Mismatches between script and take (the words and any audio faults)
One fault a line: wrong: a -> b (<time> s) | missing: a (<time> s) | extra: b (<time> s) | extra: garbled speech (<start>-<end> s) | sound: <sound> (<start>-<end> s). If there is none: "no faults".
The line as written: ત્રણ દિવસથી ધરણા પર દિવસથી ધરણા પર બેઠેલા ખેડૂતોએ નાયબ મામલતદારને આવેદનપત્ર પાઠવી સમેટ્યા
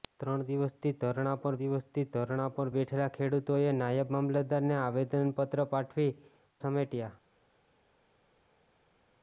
no faults